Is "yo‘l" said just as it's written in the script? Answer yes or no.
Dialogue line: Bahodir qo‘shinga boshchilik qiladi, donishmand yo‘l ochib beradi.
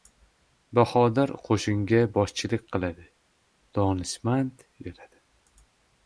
no